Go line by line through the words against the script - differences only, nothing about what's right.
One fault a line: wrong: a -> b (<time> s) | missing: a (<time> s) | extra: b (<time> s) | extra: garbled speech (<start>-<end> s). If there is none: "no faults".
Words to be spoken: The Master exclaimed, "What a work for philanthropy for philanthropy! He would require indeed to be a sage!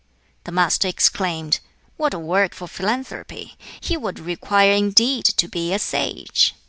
missing: for philanthropy (3.6 s)